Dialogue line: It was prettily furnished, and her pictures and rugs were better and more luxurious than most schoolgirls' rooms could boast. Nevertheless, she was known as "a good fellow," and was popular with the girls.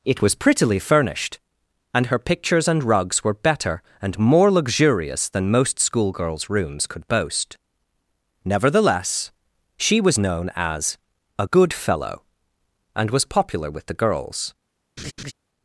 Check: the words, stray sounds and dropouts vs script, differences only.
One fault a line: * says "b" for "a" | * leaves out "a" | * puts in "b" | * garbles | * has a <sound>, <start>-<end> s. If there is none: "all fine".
* has a laugh, 15.0-15.3 s